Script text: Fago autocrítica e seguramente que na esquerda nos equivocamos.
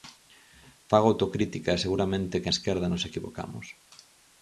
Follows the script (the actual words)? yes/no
no